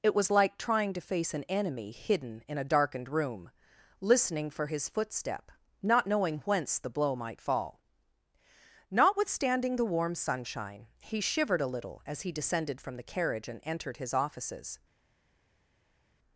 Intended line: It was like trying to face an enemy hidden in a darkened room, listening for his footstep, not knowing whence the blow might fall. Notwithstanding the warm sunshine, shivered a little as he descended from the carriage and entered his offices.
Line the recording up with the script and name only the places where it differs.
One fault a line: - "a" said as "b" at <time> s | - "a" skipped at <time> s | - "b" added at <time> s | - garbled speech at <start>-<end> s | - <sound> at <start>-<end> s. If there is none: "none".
- "he" added at 11.0 s